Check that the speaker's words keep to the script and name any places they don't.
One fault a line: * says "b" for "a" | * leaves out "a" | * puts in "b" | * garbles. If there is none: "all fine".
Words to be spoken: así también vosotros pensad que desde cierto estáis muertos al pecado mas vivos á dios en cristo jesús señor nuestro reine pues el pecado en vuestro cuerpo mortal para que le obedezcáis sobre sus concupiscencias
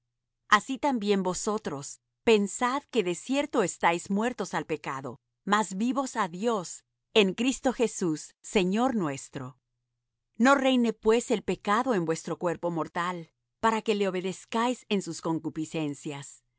* says "de" for "desde"
* puts in "no"
* says "en" for "sobre"